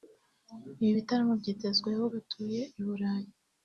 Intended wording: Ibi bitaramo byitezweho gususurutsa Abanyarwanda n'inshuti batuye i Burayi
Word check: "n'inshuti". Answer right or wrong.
wrong